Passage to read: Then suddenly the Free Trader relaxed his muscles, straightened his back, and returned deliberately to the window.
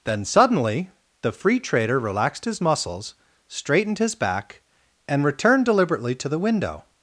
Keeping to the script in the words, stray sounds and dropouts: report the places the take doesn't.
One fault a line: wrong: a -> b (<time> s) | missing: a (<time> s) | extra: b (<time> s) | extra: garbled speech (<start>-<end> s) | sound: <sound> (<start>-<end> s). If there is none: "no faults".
no faults